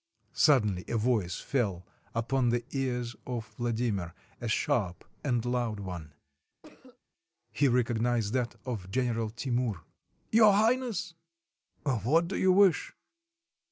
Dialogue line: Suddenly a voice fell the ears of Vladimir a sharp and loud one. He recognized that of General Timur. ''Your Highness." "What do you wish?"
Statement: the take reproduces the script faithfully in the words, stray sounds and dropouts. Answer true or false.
false